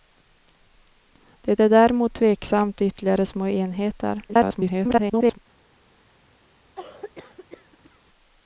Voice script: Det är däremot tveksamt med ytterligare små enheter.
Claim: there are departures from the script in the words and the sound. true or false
true